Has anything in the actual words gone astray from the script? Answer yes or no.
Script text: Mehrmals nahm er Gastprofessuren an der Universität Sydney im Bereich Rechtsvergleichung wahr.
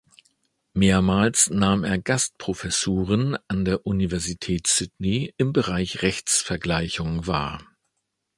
no